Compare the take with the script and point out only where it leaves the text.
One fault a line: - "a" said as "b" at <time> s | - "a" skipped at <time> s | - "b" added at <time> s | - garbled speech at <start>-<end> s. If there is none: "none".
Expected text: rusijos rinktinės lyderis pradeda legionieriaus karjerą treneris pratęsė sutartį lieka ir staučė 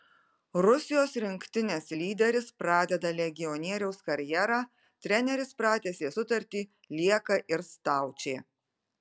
none